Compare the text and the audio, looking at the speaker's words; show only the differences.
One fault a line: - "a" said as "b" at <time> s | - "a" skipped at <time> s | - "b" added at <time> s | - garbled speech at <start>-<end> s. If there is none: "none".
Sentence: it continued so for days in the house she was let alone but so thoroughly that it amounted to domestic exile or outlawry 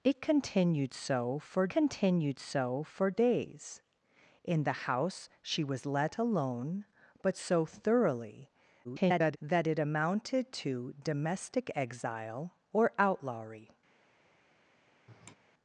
- "continued so for" added at 1.7 s
- garbled speech at 8.8-9.4 s